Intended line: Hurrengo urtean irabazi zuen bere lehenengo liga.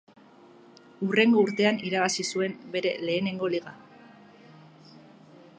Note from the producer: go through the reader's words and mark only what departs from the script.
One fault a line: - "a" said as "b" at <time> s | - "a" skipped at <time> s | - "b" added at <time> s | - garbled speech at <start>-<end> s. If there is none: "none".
none